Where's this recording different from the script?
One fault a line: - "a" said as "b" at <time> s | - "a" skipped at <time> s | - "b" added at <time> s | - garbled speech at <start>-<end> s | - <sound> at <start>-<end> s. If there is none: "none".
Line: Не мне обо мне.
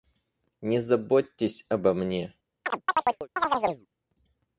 - "мне" said as "заботьтесь" at 0.8 s
- chirp at 2.6-3.9 s